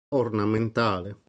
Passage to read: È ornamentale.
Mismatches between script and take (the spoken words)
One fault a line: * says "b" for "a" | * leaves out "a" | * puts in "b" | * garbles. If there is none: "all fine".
all fine